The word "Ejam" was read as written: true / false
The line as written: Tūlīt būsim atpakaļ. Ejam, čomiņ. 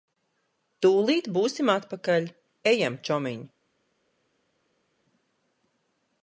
true